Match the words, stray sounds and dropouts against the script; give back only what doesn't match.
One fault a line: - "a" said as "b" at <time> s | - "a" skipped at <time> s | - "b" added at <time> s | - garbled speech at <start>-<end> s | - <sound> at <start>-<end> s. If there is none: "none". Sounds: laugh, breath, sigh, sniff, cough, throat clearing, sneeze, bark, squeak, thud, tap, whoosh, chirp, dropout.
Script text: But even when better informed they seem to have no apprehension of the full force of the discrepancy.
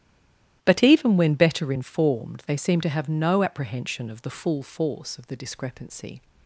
none